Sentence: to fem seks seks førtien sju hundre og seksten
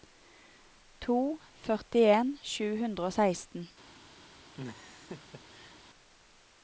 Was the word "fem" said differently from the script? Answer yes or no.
yes